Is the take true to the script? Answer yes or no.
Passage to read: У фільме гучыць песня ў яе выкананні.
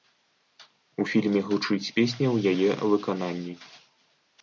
yes